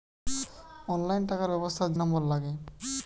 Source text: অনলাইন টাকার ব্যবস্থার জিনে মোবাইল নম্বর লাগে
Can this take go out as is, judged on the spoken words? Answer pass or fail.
fail